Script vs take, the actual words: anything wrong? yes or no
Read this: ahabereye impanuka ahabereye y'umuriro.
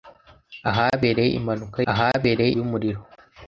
no